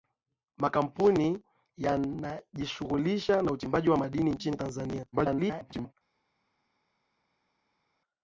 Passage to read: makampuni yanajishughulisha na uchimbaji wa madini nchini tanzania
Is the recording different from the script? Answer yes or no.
yes